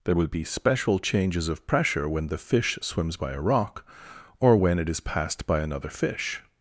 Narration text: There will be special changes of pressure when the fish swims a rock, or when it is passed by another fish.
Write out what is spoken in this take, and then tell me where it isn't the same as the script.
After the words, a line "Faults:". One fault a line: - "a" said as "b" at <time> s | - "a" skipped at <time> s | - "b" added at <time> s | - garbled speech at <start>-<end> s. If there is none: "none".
There will be special changes of pressure when the fish swims by a rock, or when it is passed by another fish.
Faults:
- "by" added at 3.2 s